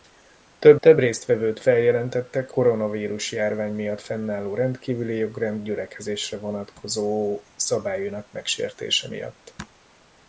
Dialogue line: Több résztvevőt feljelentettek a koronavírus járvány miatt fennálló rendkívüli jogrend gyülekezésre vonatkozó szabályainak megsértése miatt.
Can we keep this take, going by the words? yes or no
no